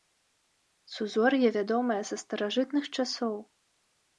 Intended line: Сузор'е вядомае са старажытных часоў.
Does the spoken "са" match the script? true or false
true